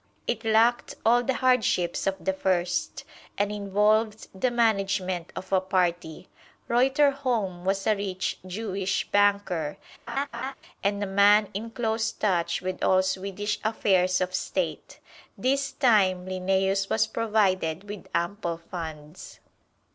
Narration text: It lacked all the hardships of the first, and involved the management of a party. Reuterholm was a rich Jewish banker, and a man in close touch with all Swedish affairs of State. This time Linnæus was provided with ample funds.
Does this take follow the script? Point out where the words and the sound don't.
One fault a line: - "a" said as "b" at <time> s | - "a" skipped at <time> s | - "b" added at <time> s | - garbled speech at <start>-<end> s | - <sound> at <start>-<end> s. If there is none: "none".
- laugh at 10.1-10.5 s